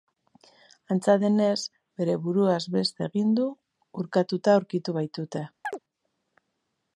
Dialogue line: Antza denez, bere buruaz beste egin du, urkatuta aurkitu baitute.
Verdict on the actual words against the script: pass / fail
pass